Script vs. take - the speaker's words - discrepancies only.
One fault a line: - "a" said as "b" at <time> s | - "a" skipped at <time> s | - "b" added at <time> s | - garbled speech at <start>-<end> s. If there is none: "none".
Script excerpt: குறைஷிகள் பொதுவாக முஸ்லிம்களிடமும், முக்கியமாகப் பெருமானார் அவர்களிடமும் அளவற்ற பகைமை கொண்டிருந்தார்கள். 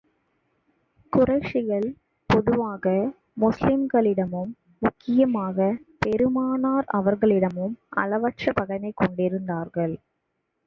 none